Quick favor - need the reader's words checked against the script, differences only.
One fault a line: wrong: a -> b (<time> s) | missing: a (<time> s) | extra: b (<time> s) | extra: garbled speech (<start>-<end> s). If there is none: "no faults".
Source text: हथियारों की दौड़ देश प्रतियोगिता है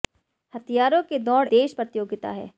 no faults